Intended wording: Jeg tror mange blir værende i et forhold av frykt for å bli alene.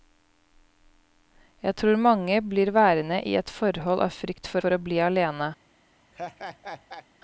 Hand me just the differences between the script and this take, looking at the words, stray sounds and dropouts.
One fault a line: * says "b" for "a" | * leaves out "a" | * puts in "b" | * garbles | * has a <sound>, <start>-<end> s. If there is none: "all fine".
* puts in "for"
* has a laugh, 6.1-7.1 s